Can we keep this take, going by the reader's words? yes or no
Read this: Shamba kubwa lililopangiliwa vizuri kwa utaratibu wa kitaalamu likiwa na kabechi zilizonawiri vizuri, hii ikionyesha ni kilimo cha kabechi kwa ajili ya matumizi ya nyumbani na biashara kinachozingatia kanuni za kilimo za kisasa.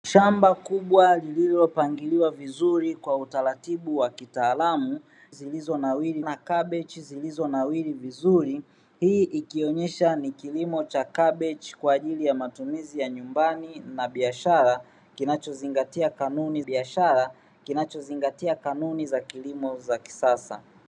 no